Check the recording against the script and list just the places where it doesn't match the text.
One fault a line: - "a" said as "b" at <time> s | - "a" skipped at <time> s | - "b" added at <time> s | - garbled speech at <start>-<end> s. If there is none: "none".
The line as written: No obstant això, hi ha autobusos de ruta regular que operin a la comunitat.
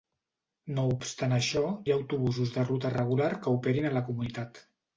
none